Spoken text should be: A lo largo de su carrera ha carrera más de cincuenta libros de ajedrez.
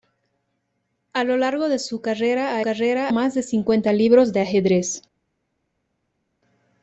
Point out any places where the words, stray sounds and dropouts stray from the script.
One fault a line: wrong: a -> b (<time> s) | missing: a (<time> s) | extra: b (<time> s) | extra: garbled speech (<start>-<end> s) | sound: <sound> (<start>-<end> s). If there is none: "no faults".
no faults